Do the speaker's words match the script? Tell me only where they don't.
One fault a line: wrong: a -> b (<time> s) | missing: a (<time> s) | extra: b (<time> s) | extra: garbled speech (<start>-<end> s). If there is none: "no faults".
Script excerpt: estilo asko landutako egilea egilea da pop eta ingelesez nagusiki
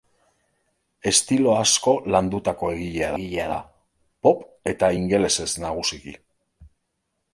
no faults